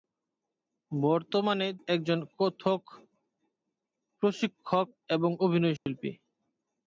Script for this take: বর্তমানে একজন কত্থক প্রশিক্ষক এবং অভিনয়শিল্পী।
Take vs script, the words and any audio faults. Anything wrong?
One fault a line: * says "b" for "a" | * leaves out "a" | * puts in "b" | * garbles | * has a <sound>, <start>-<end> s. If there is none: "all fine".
* has a dropout, 5.8-5.9 s